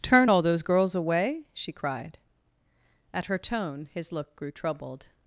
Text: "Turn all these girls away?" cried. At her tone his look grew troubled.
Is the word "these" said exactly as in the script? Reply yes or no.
no